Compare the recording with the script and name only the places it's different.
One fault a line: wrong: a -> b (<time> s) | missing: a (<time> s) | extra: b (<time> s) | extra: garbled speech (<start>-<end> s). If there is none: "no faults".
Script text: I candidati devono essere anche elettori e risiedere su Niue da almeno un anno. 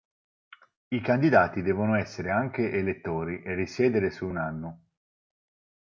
missing: Niue da almeno (4.3 s)